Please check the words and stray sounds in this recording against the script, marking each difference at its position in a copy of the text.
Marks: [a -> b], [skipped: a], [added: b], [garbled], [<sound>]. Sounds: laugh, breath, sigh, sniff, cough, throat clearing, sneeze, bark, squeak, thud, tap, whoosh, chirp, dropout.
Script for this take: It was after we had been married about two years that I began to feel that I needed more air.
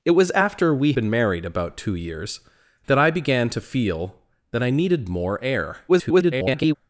It was after we [skipped: had] been married about two years that I began to feel that I needed more air. [garbled]